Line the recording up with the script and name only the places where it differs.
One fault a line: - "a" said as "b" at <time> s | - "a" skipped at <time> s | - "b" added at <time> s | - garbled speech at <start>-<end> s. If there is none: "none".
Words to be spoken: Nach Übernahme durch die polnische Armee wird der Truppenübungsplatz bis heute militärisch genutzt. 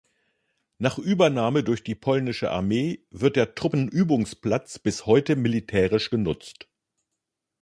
none